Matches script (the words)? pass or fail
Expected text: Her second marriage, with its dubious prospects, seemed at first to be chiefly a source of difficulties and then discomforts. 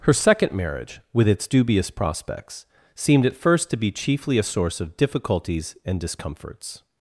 fail